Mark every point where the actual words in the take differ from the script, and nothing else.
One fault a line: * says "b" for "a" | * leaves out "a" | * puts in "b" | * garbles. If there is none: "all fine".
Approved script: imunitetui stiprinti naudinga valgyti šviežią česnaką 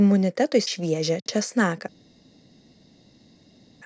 * leaves out "stiprinti naudinga valgyti"